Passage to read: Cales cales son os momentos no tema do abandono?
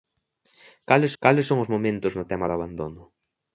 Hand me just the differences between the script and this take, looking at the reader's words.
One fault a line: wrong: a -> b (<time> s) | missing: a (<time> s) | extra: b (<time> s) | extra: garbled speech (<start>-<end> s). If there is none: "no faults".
no faults